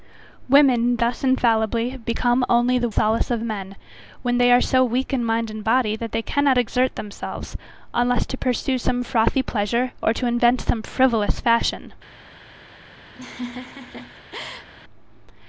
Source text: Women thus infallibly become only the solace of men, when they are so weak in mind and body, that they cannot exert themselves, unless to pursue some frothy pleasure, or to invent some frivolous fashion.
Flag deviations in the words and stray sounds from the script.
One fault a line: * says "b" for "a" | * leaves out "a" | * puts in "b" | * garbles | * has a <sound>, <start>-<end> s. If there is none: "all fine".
* has a laugh, 13.1-14.7 s